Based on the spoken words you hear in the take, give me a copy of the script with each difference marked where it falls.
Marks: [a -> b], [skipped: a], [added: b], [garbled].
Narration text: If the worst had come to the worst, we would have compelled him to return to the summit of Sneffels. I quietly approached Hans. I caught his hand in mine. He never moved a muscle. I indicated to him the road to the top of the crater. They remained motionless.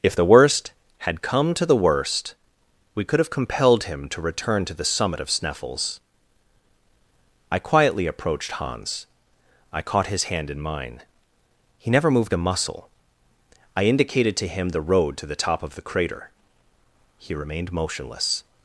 If the worst had come to the worst, we [would -> could] have compelled him to return to the summit of Sneffels. I quietly approached Hans. I caught his hand in mine. He never moved a muscle. I indicated to him the road to the top of the crater. [They -> He] remained motionless.